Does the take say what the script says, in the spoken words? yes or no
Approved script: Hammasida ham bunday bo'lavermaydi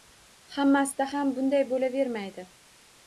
yes